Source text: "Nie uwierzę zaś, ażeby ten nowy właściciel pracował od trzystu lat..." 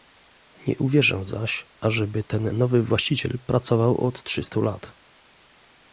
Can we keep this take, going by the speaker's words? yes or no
yes